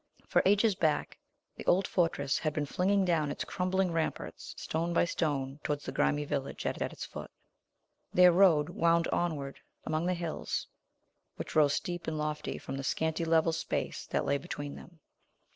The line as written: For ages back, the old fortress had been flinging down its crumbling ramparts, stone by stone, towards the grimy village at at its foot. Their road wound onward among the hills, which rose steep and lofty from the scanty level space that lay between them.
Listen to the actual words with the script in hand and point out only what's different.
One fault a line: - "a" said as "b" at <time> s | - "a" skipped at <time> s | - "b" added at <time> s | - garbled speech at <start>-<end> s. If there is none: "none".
none